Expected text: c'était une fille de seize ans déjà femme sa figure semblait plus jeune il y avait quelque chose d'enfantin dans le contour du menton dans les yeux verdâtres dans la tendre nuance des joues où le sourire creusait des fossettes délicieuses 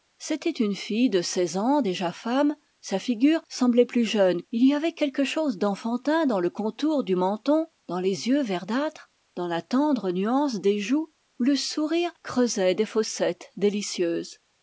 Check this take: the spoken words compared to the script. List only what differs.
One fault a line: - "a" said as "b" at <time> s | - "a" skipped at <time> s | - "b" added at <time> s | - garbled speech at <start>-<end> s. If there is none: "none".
none